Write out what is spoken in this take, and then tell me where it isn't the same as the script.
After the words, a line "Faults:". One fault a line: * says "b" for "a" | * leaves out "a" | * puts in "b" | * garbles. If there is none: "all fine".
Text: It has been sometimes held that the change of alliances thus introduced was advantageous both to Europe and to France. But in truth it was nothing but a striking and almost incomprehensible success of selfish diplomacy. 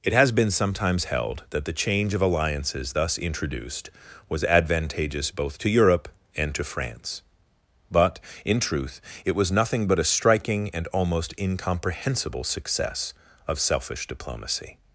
It has been sometimes held that the change of alliances thus introduced was advantageous both to Europe and to France. But in truth it was nothing but a striking and almost incomprehensible success of selfish diplomacy.
Faults:
all fine